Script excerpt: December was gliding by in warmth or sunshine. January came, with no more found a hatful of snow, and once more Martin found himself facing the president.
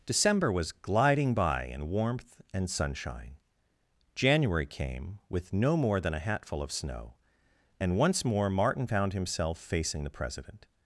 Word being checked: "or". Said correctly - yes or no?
no